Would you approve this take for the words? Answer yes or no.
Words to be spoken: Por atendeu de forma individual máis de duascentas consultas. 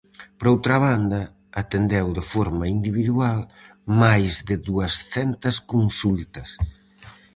no